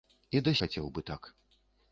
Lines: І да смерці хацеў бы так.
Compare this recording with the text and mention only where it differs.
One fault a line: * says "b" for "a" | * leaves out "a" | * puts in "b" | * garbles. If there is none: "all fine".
* leaves out "смерці"